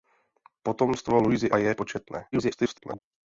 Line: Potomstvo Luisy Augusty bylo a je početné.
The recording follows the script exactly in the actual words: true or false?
false